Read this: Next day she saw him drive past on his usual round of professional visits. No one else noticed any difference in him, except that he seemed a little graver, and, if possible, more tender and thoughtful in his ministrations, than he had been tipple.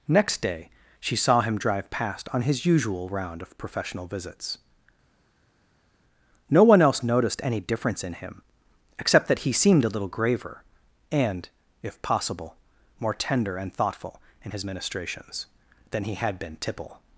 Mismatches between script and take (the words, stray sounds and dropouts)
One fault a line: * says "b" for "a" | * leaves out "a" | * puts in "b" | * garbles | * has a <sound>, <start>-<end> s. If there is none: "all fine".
all fine